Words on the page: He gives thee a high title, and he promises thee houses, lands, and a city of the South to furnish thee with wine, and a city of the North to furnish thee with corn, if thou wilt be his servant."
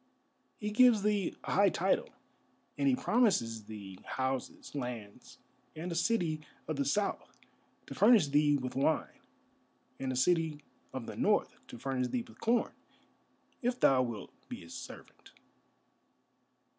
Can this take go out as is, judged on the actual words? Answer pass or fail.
pass